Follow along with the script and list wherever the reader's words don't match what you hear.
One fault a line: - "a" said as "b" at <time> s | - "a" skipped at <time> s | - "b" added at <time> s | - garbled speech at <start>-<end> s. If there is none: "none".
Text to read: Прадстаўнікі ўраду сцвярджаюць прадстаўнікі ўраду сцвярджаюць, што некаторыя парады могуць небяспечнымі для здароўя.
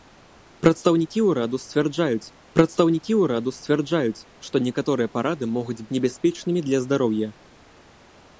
none